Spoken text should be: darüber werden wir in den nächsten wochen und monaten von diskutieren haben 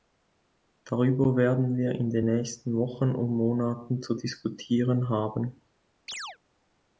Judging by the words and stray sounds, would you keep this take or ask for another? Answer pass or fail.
fail